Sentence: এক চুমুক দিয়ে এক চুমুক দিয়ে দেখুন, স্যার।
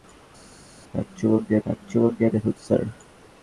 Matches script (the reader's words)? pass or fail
pass